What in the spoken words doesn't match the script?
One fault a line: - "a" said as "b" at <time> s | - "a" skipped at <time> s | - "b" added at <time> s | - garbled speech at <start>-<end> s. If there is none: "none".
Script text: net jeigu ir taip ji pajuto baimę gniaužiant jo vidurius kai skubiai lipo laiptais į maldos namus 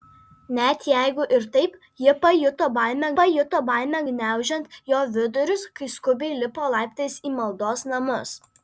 - "pajuto baimę" added at 3.2 s